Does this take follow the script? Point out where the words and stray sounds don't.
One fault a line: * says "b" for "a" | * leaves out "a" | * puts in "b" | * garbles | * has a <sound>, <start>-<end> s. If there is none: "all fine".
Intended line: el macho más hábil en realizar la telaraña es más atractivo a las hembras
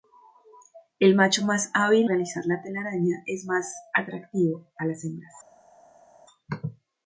* leaves out "en"